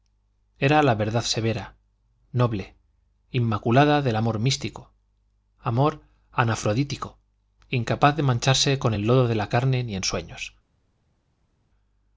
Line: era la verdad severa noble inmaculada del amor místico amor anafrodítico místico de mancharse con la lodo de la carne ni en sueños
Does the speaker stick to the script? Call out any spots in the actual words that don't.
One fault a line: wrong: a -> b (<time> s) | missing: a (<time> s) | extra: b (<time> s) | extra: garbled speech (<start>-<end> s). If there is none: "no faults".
wrong: místico -> incapaz (7.7 s)
wrong: la -> el (8.9 s)